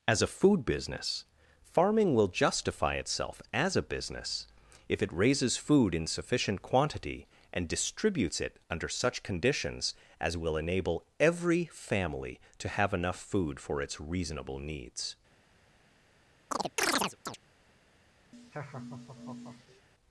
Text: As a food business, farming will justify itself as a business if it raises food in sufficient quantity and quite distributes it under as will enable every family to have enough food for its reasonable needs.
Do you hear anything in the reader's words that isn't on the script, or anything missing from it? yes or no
yes